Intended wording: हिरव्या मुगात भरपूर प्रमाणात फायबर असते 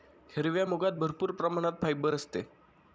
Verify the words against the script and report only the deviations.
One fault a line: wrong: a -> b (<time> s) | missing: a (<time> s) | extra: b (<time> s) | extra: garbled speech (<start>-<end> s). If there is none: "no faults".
no faults